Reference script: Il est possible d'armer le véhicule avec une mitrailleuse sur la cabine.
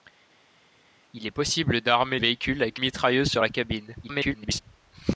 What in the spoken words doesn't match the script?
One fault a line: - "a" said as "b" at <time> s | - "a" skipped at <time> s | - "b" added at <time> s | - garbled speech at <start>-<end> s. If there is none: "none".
- "le" skipped at 2.2 s
- "une" skipped at 2.8 s
- garbled speech at 4.0-4.6 s